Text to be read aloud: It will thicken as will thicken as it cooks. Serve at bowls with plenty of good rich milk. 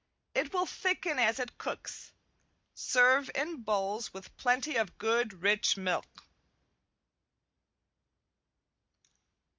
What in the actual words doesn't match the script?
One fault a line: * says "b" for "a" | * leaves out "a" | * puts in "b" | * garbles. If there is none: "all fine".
* leaves out "will thicken as"
* says "in" for "at"